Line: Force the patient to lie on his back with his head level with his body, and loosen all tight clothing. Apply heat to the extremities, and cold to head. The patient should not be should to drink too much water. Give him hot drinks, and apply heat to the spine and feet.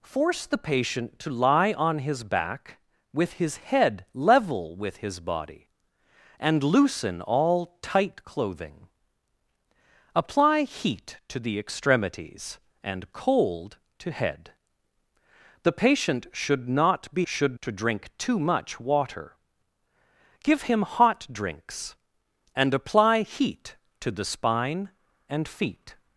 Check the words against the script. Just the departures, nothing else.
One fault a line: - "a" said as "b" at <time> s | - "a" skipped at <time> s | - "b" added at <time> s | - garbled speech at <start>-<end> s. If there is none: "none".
none